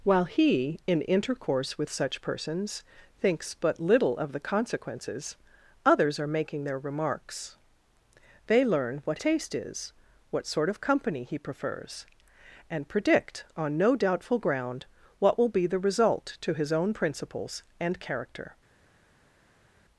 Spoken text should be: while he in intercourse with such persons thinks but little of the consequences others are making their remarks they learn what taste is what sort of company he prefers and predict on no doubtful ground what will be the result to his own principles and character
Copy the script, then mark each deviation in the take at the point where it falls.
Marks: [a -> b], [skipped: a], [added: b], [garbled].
while he in intercourse with such persons thinks but little of the consequences others are making their remarks they learn what taste is what sort of company he prefers and predict on no doubtful ground what will be the result to his own principles and character